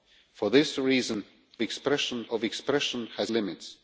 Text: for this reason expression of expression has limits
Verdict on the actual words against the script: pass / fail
pass